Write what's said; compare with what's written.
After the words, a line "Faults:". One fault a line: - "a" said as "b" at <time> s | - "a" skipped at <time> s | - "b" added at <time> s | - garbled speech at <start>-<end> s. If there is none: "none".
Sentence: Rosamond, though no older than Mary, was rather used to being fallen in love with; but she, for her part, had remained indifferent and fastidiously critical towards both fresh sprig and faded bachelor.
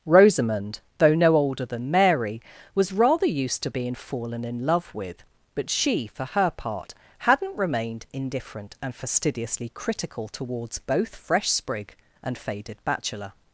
Rosamond, though no older than Mary, was rather used to being fallen in love with; but she, for her part, hadn't remained indifferent and fastidiously critical towards both fresh sprig and faded bachelor.
Faults:
- "had" said as "hadn't" at 7.2 s